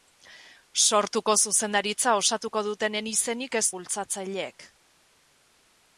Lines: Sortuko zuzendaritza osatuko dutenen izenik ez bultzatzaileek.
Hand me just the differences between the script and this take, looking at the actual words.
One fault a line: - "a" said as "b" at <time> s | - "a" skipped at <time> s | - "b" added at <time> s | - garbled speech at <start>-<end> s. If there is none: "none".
none